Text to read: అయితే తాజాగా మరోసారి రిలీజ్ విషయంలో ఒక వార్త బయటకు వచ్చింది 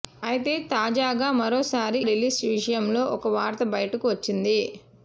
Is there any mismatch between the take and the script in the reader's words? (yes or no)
no